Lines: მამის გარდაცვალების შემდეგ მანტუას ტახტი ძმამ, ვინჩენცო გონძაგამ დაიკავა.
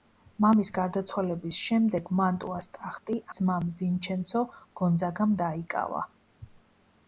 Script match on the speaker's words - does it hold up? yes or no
yes